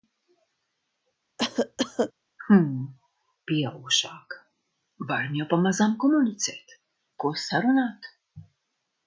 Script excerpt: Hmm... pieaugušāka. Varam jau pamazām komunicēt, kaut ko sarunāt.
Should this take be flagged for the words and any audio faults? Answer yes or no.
yes